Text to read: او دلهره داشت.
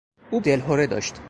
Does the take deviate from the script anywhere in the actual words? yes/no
no